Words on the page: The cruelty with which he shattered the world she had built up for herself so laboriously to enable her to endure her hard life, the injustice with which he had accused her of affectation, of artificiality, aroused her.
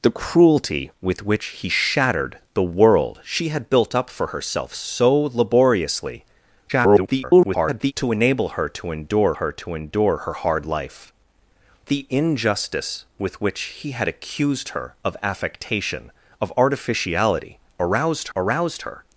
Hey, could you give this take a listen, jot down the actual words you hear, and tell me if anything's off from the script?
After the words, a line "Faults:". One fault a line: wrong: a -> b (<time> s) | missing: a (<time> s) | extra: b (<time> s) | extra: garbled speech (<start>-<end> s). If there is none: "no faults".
The cruelty with which he shattered the world she had built up for herself so laboriously [garbled] to enable her to endure her to endure her hard life, the injustice with which he had accused her of affectation, of artificiality, aroused aroused her.
Faults:
extra: garbled speech (6.7-7.9 s)
extra: to endure her (9.5 s)
extra: aroused (18.3 s)